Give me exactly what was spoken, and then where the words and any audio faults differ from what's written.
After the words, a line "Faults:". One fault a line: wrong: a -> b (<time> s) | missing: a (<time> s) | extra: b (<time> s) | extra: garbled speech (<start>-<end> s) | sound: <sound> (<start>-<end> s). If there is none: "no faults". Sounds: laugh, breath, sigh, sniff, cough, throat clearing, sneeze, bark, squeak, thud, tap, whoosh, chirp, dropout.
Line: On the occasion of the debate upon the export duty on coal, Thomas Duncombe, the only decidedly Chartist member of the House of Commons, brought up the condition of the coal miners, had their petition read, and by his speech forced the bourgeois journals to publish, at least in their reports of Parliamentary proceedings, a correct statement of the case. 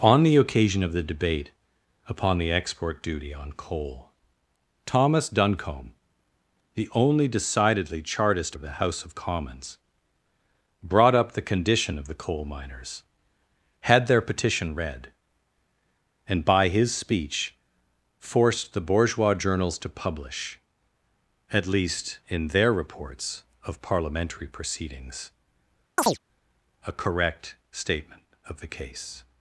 On the occasion of the debate upon the export duty on coal, Thomas Duncombe, the only decidedly Chartist of the House of Commons, brought up the condition of the coal miners, had their petition read, and by his speech forced the bourgeois journals to publish, at least in their reports of Parliamentary proceedings, a correct statement of the case.
Faults:
missing: member (8.6 s)
sound: chirp (26.0-26.2 s)